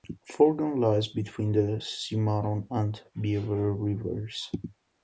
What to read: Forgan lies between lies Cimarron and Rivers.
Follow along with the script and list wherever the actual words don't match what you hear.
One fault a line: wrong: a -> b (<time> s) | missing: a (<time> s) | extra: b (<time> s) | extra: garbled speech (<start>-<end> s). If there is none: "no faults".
wrong: lies -> the (1.5 s)
extra: Beaver (3.2 s)